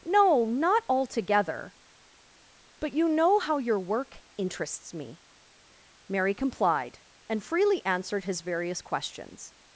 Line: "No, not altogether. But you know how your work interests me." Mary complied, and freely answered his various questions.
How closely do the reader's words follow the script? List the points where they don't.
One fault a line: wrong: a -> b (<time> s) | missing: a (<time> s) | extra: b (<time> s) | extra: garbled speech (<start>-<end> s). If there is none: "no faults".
no faults